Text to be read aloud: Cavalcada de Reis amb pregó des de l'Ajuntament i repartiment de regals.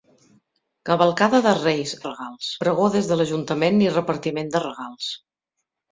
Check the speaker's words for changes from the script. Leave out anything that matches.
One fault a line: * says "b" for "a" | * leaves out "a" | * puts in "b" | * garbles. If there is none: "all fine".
* says "regals" for "amb"